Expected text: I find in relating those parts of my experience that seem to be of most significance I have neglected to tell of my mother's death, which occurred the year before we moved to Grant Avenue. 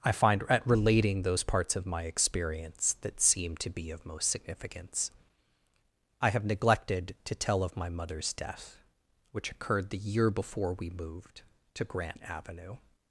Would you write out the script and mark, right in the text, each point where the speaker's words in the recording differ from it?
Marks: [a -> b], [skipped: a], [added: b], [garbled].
I find [in -> at] relating those parts of my experience that seem to be of most significance I have neglected to tell of my mother's death, which occurred the year before we moved to Grant Avenue.